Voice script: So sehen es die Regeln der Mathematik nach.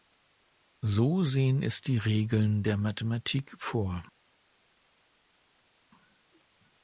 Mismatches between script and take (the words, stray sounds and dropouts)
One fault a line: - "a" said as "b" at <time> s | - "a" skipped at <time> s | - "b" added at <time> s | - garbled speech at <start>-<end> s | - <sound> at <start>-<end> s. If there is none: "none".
- "nach" said as "vor" at 3.6 s